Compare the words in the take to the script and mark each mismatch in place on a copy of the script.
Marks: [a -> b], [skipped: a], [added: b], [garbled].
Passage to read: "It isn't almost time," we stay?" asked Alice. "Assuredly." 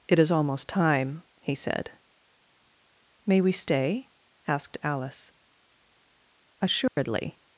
"It [isn't -> is] almost time," [added: he said May] we stay?" asked Alice. "Assuredly."